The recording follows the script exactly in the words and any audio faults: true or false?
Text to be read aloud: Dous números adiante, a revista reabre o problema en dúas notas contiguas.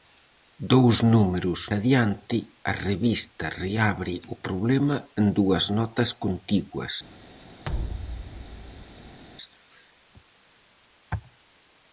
false